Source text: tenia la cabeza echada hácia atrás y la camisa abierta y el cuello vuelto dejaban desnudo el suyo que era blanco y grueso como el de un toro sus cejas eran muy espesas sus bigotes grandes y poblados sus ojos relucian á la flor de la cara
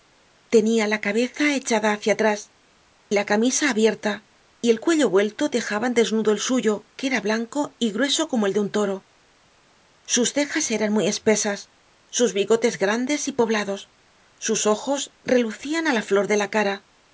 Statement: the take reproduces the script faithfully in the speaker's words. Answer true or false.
false